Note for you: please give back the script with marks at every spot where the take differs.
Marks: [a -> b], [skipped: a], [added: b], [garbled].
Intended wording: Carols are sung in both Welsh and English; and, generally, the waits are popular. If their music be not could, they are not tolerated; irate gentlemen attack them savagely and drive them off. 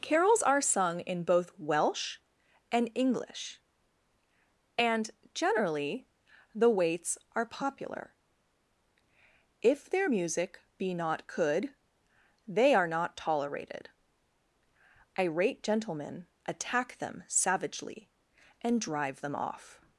Carols are sung in both Welsh and English; and, generally, the waits are popular. If their music be not could, they are not tolerated; irate gentlemen attack them savagely and drive them off.